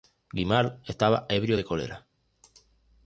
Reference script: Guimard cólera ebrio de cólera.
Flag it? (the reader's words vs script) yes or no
yes